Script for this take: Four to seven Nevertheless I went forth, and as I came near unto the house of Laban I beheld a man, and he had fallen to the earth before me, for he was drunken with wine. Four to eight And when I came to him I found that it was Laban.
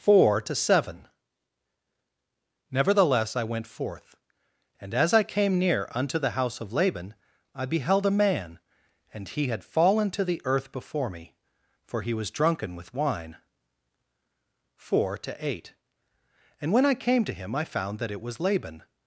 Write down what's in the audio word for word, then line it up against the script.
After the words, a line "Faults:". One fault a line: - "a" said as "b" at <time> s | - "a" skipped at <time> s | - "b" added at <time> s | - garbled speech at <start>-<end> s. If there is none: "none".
Four to seven Nevertheless I went forth, and as I came near unto the house of Laban I beheld a man, and he had fallen to the earth before me, for he was drunken with wine. Four to eight And when I came to him I found that it was Laban.
Faults:
none